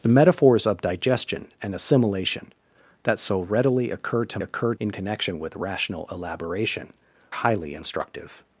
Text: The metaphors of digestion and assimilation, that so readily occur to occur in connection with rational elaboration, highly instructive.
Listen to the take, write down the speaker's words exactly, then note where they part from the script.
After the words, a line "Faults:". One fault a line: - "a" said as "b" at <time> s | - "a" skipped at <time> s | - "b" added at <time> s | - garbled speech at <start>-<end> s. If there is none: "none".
The metaphors of digestion and assimilation, that so readily occur to occur in connection with rational elaboration, highly instructive.
Faults:
none